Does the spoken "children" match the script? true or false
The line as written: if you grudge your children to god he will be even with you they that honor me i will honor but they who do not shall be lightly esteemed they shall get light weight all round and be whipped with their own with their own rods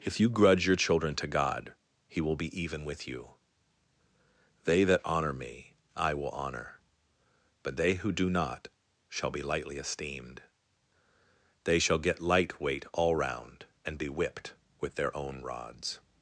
true